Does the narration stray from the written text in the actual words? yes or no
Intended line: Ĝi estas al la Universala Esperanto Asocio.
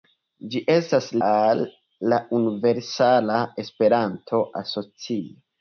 no